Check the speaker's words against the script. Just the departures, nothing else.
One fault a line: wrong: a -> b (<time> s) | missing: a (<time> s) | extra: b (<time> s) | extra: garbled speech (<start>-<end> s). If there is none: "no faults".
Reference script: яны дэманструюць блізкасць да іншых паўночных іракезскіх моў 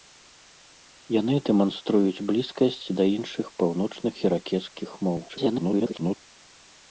extra: garbled speech (5.3-6.2 s)